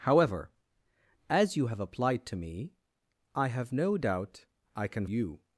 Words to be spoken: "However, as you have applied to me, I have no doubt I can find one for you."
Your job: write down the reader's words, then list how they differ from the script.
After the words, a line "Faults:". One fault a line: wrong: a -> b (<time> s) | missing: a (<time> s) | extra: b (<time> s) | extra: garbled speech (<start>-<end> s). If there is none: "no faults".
"However, as you have applied to me, I have no doubt I can you."
Faults:
missing: find one for (5.1 s)